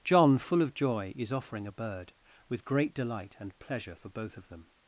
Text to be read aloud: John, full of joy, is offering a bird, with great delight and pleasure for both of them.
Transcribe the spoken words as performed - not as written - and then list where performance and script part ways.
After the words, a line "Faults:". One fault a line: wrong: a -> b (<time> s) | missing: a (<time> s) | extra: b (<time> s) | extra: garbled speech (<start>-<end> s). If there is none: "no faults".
John, full of joy, is offering a bird, with great delight and pleasure for both of them.
Faults:
no faults